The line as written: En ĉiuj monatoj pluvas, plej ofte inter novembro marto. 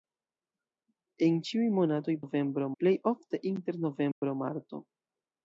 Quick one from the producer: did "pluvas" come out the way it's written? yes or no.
no